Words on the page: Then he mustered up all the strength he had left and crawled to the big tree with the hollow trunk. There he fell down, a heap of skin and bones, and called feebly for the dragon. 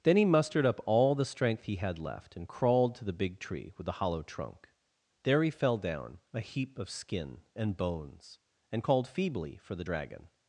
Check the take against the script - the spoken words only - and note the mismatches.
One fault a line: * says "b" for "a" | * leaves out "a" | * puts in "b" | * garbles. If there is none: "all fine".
all fine